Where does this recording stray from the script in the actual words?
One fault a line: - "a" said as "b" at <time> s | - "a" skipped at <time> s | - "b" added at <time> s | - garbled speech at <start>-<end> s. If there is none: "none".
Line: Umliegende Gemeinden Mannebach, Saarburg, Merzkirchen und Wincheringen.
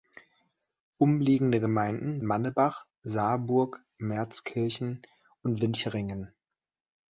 none